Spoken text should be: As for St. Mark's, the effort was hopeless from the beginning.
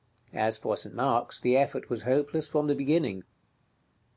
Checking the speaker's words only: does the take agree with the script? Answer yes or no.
yes